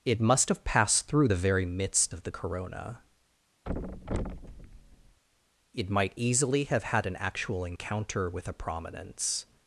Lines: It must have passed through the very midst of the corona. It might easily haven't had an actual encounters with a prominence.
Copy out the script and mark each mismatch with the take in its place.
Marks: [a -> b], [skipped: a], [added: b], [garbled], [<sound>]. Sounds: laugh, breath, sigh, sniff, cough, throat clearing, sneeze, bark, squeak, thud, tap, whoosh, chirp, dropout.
It must have passed through the very midst of the corona. [thud] It might easily [haven't -> have] had an actual [encounters -> encounter] with a prominence.